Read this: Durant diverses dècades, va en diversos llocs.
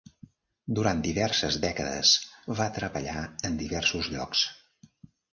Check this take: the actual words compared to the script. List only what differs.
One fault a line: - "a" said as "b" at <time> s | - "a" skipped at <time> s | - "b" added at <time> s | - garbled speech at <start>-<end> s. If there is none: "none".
- "treballar" added at 2.7 s